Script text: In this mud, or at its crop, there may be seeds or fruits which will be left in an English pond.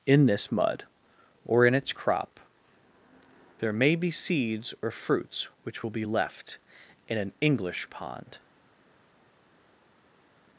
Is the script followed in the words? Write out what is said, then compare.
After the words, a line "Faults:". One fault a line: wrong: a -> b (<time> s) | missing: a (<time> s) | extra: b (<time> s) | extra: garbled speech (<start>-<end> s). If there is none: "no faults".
In this mud, or in its crop, there may be seeds or fruits which will be left in an English pond.
Faults:
wrong: at -> in (1.6 s)